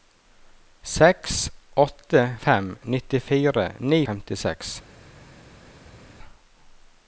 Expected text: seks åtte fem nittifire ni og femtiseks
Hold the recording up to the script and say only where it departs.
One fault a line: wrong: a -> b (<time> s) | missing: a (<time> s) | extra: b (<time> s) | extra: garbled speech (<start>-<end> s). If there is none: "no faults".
no faults